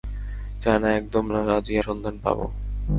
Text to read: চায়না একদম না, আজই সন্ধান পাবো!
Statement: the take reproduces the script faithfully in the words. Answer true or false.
true